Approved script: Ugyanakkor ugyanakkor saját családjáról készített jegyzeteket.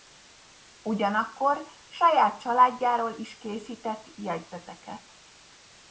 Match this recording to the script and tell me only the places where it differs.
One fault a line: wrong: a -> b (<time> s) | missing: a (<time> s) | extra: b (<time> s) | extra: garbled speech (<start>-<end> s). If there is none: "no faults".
missing: ugyanakkor (1.7 s)
extra: is (3.2 s)